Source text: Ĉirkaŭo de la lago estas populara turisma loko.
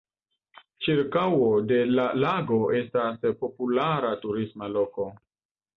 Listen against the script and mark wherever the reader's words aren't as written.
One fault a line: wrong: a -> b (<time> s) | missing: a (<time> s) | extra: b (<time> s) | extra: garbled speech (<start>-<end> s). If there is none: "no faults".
no faults